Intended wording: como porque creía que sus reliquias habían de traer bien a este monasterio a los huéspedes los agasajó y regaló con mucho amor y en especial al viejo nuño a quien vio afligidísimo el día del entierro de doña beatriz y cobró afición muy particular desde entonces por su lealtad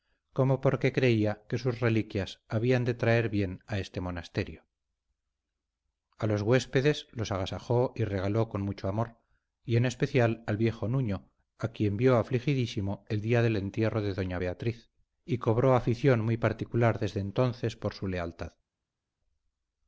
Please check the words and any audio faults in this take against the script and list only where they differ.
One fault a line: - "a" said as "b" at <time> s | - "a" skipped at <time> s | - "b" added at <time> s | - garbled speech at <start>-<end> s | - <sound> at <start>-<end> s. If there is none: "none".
none